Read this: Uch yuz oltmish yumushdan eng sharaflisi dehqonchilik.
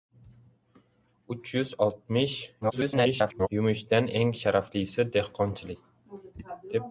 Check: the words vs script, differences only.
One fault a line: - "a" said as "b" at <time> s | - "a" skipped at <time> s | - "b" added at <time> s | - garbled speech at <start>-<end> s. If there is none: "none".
- garbled speech at 2.6-3.5 s